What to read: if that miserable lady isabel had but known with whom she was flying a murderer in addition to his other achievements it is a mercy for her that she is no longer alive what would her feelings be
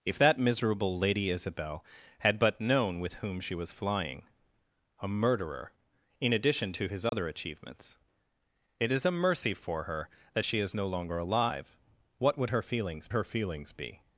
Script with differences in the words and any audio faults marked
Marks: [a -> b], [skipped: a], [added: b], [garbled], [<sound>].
if that miserable lady isabel had but known with whom she was flying a murderer in addition to his other [dropout] achievements it is a mercy for her that she is no longer alive what would her feelings [added: her feelings] be